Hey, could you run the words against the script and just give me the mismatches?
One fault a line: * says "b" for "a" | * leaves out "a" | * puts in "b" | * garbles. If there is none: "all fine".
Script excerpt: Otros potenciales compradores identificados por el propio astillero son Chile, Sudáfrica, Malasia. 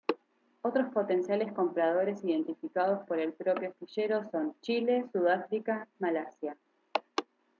all fine